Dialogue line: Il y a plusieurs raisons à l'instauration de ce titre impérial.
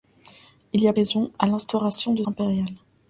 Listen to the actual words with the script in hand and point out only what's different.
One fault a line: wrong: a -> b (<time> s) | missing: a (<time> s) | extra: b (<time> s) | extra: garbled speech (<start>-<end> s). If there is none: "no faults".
missing: plusieurs (0.9 s)
missing: ce titre (2.2 s)